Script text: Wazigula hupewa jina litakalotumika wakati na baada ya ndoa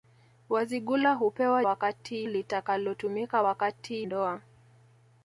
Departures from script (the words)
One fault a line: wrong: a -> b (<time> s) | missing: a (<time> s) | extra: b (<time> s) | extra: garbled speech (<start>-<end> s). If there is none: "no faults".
wrong: jina -> wakati (1.6 s)
missing: na baada ya (4.1 s)